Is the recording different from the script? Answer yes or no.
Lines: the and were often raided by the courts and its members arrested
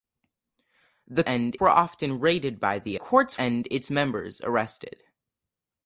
no